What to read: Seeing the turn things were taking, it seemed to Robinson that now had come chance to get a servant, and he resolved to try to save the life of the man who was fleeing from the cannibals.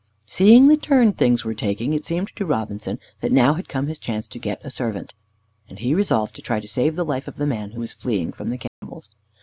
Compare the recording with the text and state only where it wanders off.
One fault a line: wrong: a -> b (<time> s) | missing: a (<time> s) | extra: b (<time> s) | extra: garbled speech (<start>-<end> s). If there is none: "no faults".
extra: his (3.9 s)